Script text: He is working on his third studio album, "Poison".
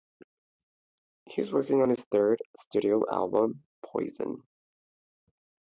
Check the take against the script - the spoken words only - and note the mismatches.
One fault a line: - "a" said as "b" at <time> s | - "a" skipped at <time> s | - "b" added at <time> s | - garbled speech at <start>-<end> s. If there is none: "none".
none